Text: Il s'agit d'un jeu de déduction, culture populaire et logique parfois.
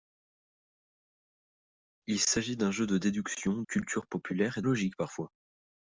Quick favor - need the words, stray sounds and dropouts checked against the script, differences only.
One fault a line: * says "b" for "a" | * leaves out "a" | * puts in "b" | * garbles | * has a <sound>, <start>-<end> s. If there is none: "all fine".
all fine